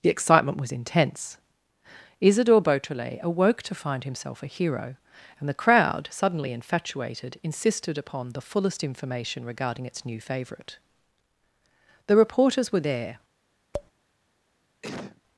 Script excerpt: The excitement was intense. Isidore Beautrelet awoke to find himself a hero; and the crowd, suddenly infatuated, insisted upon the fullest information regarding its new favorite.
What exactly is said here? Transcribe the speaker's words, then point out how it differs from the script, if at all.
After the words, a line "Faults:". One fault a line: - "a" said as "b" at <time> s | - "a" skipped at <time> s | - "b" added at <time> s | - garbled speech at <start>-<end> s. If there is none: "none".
The excitement was intense. Isidore Beautrelet awoke to find himself a hero; and the crowd, suddenly infatuated, insisted upon the fullest information regarding its new favorite. The reporters were there
Faults:
- "The reporters were there" added at 12.1 s